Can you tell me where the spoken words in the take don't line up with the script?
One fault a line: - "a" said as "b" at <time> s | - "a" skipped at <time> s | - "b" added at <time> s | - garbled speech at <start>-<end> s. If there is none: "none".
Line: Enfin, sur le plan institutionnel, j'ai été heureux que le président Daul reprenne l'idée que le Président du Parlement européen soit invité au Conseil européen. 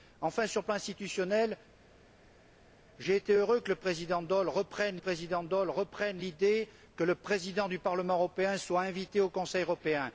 - "président Daul reprenne" added at 5.0 s